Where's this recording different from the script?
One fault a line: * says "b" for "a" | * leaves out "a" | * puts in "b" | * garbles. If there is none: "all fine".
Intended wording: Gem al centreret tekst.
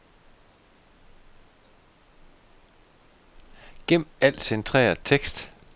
all fine